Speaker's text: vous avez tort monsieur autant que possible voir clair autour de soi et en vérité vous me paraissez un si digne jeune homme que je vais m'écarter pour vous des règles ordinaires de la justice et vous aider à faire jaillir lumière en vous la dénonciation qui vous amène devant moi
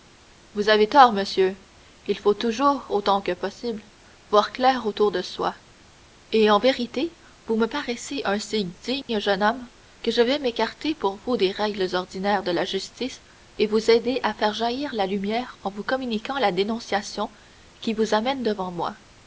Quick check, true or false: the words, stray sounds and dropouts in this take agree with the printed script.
false